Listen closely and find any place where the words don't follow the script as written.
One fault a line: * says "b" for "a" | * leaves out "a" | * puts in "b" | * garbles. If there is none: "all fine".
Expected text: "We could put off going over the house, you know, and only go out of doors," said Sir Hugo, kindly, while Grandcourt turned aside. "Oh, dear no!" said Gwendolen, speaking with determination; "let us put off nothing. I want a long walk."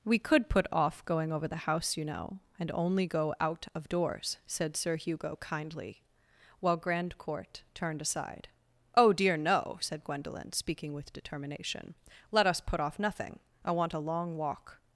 all fine